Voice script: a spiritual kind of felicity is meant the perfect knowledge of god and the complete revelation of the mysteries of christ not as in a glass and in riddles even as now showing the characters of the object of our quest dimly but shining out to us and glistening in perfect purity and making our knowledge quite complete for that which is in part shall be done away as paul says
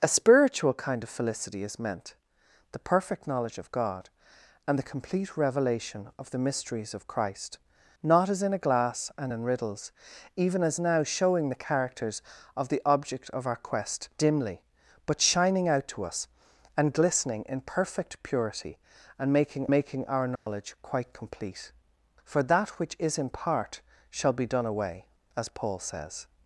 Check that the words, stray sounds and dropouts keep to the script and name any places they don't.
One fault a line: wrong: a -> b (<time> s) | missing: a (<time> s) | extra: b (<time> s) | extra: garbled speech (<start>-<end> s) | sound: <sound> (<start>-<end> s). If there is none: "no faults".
extra: making (19.7 s)
sound: dropout (20.4-20.5 s)